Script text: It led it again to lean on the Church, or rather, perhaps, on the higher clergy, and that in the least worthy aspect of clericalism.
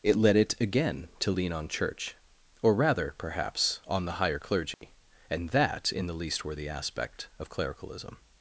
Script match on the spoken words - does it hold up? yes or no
no